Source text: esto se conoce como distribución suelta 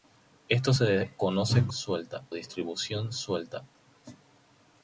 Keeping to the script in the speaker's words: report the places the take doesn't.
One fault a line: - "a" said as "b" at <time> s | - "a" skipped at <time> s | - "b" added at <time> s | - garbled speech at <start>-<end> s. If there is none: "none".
- "como" said as "suelta" at 1.7 s